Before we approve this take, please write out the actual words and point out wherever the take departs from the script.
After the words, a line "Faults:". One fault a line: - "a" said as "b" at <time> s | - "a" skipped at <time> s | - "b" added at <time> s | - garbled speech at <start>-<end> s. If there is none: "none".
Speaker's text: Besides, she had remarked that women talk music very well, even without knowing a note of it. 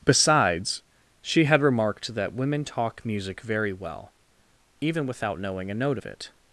Besides, she had remarked that women talk music very well, even without knowing a note of it.
Faults:
none